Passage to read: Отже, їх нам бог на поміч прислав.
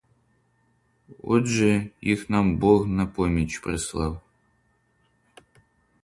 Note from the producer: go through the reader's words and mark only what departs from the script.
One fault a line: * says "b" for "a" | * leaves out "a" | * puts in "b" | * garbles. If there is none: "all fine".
all fine